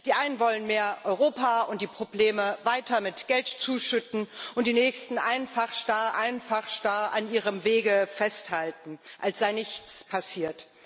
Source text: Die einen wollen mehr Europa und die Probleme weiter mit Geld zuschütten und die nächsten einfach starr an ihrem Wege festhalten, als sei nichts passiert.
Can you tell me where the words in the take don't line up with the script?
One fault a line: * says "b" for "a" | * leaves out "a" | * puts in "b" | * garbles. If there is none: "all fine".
* puts in "einfach starr"